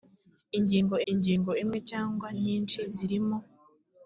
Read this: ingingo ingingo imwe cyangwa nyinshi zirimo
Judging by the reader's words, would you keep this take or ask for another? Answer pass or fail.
pass